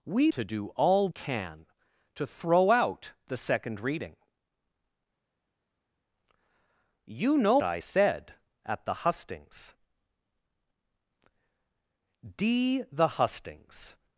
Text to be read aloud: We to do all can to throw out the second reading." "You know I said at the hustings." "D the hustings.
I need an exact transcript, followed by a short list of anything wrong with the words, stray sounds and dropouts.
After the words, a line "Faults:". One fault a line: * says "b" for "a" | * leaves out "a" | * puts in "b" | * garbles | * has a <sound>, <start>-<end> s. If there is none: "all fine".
We to do all can to throw out the second reading." "You know I said at the hustings." "D the hustings.
Faults:
all fine